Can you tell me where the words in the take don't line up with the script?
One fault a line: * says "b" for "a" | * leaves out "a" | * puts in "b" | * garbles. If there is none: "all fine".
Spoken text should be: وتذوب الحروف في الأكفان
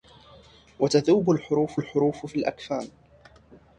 * puts in "الحروف"